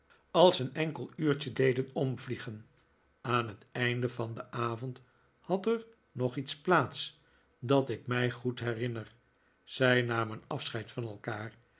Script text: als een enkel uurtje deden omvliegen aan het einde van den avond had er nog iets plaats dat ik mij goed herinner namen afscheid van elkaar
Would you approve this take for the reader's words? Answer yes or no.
no